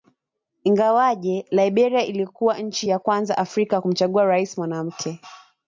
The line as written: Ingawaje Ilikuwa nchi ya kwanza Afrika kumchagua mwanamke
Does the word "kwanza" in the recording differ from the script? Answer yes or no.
no